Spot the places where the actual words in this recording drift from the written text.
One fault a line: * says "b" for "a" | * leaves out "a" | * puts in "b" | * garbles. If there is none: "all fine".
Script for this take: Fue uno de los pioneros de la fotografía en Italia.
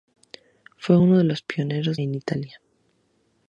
* leaves out "de la fotografía"